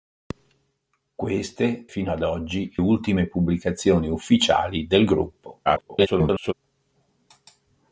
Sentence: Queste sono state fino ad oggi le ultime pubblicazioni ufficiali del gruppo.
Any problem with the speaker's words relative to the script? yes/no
yes